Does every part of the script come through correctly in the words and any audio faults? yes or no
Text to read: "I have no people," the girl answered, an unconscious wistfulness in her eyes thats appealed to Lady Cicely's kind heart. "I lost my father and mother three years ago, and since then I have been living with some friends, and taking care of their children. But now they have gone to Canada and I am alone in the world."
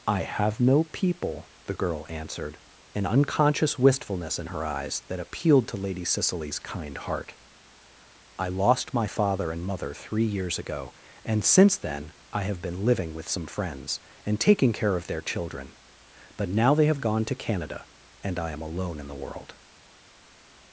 no